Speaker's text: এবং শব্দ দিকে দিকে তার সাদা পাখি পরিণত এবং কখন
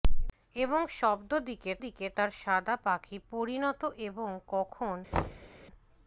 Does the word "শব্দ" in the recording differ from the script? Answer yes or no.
no